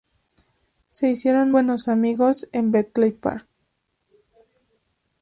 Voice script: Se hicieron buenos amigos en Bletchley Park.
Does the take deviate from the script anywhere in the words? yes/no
no